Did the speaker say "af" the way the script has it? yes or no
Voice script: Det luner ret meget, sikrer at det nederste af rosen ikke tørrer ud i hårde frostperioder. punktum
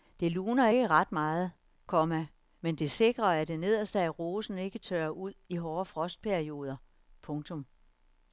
yes